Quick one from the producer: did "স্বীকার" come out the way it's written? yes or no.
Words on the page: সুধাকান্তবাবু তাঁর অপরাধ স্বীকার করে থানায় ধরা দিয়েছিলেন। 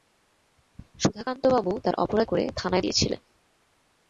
no